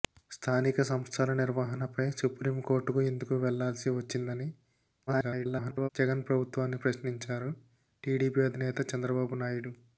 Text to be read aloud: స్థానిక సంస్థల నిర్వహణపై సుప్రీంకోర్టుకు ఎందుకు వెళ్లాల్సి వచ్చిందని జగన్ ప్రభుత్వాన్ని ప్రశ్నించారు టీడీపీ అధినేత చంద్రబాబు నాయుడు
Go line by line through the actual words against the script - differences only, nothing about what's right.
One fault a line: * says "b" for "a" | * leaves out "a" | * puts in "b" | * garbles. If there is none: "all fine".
* garbles